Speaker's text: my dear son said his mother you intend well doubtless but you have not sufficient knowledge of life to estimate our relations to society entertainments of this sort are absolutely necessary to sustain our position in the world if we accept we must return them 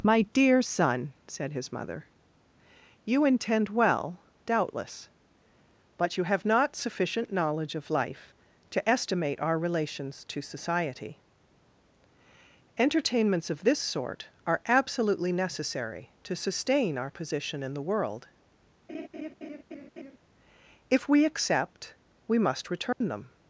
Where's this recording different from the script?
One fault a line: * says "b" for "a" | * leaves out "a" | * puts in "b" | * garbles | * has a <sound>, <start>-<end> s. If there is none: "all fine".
* has a laugh, 18.9-20.2 s
* has a dropout, 22.9-23.0 s